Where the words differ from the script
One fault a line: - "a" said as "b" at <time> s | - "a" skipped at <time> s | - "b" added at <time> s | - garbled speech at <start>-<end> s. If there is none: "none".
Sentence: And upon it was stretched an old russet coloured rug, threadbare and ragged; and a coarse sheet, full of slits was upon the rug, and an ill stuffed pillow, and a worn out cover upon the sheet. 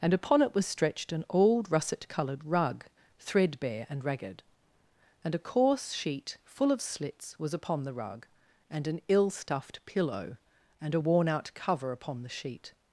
none